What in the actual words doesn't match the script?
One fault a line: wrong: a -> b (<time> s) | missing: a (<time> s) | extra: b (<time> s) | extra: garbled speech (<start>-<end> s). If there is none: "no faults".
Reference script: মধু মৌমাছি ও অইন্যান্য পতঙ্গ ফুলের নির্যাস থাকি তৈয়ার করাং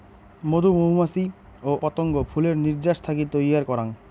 missing: অইন্যান্য (1.7 s)